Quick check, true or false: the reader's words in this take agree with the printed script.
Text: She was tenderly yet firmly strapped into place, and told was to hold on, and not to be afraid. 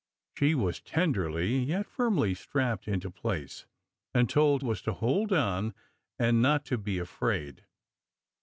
true